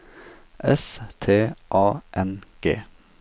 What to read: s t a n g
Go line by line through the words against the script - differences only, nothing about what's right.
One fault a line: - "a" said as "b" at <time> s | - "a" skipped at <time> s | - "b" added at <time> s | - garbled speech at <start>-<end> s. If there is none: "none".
none